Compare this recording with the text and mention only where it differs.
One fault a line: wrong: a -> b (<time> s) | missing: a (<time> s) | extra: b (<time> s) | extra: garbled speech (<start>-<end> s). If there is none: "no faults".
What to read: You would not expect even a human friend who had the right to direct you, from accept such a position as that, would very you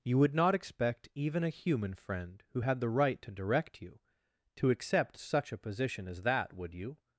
wrong: from -> to (4.6 s)
missing: very (6.7 s)